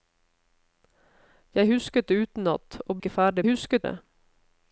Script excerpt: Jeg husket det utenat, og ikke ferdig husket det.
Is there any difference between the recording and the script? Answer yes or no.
no